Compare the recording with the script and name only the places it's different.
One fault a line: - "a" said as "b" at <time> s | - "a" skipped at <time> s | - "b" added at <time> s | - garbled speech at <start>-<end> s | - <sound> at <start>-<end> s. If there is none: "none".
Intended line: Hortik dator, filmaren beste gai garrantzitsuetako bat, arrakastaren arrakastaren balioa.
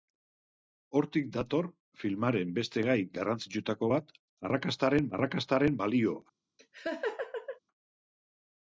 - laugh at 6.6-7.6 s